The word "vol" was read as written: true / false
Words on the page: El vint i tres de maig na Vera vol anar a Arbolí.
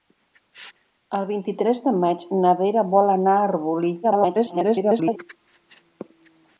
true